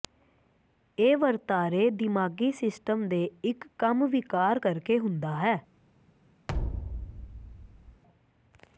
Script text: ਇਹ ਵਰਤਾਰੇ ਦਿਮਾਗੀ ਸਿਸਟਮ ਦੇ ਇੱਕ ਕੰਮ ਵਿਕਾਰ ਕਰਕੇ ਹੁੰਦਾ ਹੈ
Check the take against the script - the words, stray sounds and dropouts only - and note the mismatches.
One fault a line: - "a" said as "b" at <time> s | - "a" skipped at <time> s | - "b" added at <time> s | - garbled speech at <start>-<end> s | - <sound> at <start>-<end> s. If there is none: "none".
- thud at 6.5-8.0 s